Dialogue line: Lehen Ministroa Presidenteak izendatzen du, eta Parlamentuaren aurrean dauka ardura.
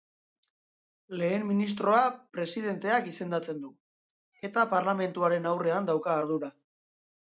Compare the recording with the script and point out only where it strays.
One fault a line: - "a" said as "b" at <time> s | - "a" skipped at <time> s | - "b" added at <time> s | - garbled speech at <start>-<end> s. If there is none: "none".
none